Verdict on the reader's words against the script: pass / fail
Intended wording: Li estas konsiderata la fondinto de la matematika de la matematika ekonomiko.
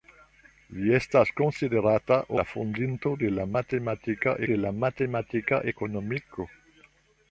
pass